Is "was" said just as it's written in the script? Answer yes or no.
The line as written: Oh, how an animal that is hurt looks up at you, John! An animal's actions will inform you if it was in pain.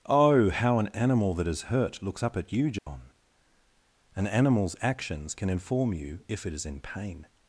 no